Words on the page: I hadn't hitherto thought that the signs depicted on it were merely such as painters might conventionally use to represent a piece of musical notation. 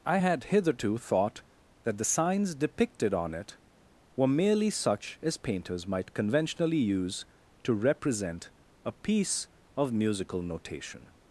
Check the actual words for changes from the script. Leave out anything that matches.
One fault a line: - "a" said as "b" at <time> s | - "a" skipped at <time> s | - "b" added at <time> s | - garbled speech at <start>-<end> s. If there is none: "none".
- "hadn't" said as "had" at 0.1 s